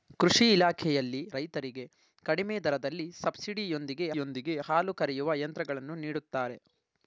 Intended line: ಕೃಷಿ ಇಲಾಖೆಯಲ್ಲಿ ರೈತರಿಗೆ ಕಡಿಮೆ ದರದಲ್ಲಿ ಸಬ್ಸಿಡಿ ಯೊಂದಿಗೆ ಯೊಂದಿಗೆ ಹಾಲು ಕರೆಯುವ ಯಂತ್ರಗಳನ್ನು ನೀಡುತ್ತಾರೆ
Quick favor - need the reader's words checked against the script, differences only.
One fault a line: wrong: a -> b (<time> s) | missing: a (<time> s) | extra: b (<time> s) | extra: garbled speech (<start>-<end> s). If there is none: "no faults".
no faults